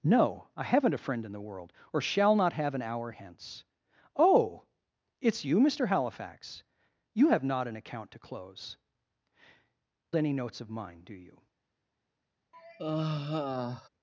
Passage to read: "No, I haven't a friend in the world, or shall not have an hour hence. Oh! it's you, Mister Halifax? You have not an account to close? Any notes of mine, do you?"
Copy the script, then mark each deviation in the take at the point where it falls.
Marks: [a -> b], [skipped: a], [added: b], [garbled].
"No, I haven't a friend in the world, or shall not have an hour hence. Oh! it's you, Mister Halifax? You have not an account to close? Any notes of mine, do you?"